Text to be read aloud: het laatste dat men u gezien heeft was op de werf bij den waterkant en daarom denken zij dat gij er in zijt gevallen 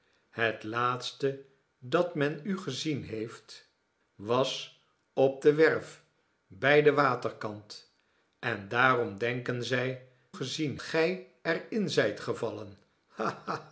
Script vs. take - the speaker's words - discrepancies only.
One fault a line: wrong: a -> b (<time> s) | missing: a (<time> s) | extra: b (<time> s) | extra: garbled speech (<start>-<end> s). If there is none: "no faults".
wrong: dat -> gezien (10.3 s)